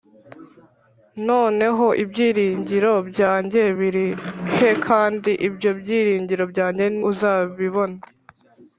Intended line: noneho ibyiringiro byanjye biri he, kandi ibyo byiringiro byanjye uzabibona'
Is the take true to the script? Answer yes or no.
yes